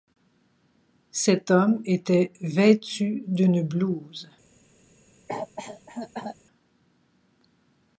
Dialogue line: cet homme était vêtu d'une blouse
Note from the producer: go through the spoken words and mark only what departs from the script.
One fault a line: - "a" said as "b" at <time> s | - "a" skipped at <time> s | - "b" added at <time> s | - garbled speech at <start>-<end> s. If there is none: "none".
none